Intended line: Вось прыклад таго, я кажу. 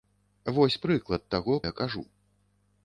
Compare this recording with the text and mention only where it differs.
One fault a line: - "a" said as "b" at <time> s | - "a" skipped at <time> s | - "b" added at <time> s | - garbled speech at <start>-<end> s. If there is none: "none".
none